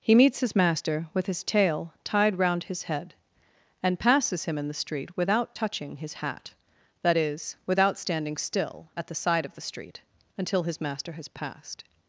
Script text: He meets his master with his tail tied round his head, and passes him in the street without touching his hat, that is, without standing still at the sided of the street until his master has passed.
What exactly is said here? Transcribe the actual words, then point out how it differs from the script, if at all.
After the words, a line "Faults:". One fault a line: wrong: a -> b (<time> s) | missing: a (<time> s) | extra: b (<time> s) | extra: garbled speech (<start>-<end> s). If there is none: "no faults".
He meets his master with his tail tied round his head, and passes him in the street without touching his hat, that is, without standing still at the side of the street until his master has passed.
Faults:
wrong: sided -> side (9.2 s)